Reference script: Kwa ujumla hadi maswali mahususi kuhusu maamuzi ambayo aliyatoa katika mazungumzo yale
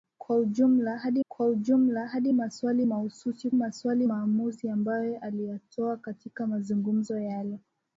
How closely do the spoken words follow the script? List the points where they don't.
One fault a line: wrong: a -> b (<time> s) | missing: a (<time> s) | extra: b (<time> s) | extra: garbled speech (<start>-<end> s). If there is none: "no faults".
extra: kwa ujumla hadi (1.3 s)
wrong: kuhusu -> maswali (3.5 s)